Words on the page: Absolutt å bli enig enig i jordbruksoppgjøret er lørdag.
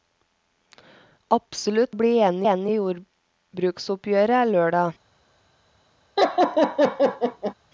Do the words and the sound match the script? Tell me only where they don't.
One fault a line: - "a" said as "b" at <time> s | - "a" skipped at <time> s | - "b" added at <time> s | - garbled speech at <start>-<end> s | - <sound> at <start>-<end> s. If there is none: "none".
- laugh at 6.2-7.5 s